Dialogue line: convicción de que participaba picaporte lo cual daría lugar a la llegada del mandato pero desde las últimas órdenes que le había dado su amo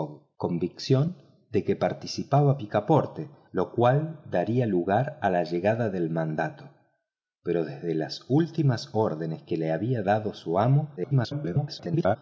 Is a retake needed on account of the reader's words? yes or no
yes